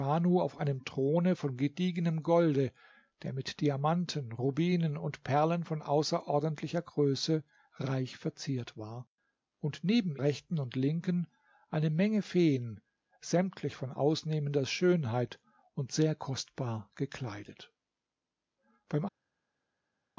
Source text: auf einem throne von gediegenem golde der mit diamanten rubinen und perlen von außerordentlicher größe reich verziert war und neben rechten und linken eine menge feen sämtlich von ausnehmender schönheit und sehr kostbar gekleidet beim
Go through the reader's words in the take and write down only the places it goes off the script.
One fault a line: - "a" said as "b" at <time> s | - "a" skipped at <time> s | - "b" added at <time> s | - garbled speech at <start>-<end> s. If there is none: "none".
none